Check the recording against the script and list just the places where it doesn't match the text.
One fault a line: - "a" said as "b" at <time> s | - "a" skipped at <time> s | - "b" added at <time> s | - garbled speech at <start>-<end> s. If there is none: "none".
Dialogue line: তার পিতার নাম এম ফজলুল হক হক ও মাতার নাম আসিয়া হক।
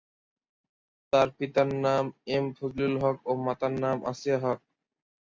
- "হক" skipped at 3.2 s